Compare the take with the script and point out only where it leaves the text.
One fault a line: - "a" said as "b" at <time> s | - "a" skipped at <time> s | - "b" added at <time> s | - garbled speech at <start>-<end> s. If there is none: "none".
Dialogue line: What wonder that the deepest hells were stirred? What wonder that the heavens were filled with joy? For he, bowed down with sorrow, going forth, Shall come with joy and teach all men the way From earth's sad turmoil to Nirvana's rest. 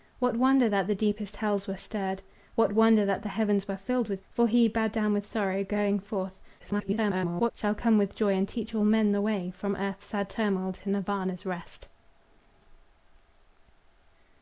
- "joy" skipped at 4.2 s
- garbled speech at 6.6-7.5 s